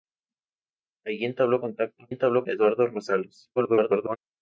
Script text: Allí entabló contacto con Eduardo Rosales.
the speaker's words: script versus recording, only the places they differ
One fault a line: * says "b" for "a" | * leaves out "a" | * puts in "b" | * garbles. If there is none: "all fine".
* says "entabló" for "con"
* garbles